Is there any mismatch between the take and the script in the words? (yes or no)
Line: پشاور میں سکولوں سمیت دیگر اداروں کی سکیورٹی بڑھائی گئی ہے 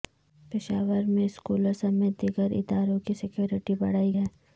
yes